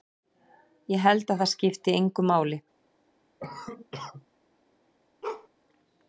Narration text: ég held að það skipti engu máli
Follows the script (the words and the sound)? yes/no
no